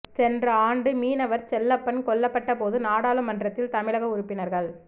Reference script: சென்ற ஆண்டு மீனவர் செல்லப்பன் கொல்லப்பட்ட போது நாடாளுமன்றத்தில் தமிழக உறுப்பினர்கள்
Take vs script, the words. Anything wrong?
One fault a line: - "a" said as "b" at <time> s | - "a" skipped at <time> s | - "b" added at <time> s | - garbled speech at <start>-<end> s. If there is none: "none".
none